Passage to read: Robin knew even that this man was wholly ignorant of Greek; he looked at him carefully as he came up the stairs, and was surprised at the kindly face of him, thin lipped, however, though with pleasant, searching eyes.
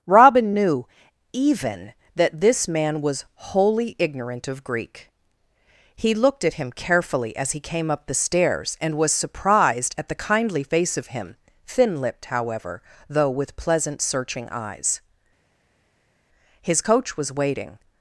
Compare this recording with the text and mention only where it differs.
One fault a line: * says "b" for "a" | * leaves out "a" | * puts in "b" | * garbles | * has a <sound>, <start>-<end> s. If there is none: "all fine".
* puts in "His coach was waiting"